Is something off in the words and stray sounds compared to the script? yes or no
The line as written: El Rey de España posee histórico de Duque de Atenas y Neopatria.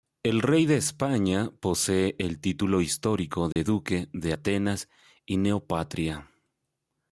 yes